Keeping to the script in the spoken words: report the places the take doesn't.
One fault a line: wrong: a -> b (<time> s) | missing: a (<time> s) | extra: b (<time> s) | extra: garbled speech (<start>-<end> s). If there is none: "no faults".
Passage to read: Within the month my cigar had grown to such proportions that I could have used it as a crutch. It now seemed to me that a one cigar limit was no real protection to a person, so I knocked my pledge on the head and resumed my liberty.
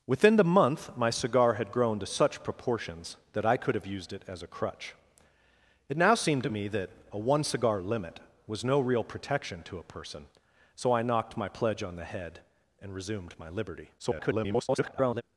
extra: garbled speech (14.0-15.2 s)